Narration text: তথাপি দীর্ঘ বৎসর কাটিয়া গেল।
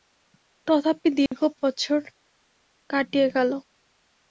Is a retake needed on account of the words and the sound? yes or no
yes